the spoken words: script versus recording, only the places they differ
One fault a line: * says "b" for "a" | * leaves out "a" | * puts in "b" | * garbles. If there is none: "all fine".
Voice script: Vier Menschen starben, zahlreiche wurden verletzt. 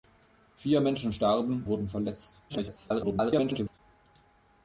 * leaves out "zahlreiche"
* garbles